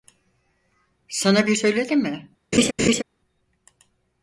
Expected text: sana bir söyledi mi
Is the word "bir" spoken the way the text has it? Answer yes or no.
yes